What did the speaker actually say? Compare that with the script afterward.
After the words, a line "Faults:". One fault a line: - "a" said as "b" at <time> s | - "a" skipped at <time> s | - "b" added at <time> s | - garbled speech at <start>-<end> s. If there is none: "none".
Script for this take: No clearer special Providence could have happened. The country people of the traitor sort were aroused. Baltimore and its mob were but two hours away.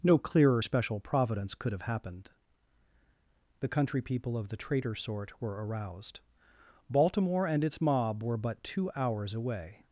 No clearer special Providence could have happened. The country people of the traitor sort were aroused. Baltimore and its mob were but two hours away.
Faults:
none